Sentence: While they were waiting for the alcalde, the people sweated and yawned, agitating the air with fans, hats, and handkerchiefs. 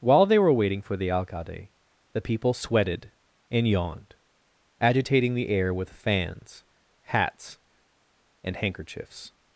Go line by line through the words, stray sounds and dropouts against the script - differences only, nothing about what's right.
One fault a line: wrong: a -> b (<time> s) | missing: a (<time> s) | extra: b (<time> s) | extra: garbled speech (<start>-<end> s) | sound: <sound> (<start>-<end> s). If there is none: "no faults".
no faults